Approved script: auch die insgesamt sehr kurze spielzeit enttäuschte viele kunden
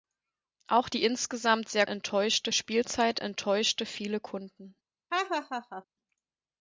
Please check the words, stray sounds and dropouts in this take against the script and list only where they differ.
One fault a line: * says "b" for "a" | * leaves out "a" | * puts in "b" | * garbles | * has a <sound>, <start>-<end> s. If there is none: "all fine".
* says "enttäuschte" for "kurze"
* has a laugh, 5.1-5.8 s